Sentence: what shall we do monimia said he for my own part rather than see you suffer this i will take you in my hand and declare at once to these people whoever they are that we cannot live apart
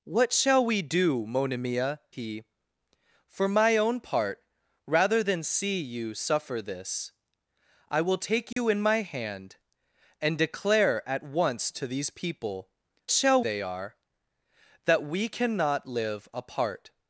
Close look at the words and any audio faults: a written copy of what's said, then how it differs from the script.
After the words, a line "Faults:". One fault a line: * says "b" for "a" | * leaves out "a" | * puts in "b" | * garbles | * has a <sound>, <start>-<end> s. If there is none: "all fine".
what shall we do monimia he for my own part rather than see you suffer this i will take you in my hand and declare at once to these people shall they are that we cannot live apart
Faults:
* leaves out "said"
* has a dropout, 8.5-8.6 s
* says "shall" for "whoever"